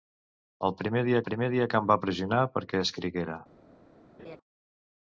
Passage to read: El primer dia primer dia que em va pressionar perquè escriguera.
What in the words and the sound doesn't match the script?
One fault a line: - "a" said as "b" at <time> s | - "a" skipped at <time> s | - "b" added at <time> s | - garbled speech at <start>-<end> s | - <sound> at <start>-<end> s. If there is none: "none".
- laugh at 4.2-4.4 s